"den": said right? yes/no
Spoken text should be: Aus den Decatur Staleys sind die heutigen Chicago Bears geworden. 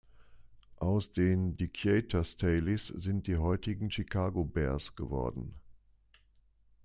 yes